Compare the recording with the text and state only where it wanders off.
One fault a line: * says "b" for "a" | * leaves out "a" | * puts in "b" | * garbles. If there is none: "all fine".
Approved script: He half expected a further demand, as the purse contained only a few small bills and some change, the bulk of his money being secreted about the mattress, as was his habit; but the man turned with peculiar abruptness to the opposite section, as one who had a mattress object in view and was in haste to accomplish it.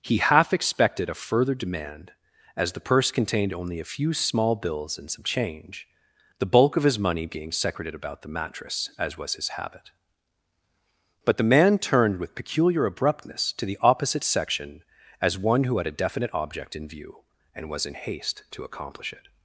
* says "definite" for "mattress"